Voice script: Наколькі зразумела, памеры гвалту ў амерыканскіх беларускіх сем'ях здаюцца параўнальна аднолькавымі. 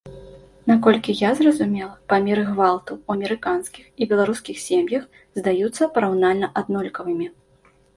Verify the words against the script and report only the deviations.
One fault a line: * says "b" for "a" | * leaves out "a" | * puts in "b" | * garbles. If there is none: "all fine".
* puts in "я"
* puts in "і"